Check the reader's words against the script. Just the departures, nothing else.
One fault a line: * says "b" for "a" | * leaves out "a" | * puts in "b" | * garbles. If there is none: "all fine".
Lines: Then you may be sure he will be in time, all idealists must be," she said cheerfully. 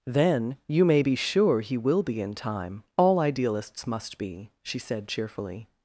all fine